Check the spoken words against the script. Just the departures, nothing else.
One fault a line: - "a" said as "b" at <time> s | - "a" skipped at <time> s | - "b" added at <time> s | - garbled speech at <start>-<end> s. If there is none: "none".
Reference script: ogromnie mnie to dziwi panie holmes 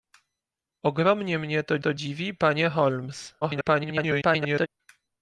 - "to" added at 1.8 s
- garbled speech at 3.4-4.7 s